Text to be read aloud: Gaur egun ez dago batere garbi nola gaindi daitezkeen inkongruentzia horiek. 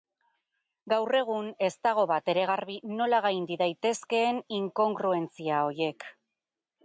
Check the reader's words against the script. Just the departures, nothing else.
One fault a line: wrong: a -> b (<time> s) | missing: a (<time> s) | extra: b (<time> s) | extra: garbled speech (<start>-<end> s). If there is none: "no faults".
no faults